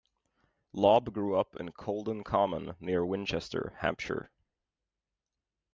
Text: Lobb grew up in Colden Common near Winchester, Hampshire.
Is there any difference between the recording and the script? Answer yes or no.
no